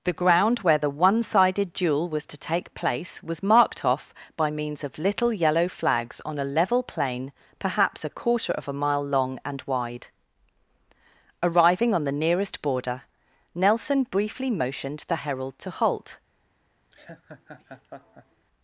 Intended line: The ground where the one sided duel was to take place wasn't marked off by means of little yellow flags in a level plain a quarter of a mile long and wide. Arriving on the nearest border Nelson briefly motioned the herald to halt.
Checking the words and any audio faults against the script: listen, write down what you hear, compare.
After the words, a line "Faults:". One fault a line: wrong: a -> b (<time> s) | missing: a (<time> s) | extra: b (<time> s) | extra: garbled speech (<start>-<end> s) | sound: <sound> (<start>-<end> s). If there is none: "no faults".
The ground where the one sided duel was to take place was marked off by means of little yellow flags on a level plain perhaps a quarter of a mile long and wide. Arriving on the nearest border Nelson briefly motioned the herald to halt.
Faults:
wrong: wasn't -> was (3.2 s)
wrong: in -> on (6.2 s)
extra: perhaps (7.6 s)
sound: laugh (16.9-18.5 s)